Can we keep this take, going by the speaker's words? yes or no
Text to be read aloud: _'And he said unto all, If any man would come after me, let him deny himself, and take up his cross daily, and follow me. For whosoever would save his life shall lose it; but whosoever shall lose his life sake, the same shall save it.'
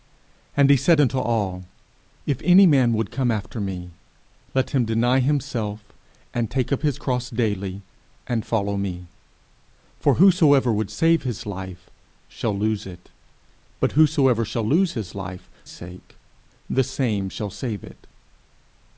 yes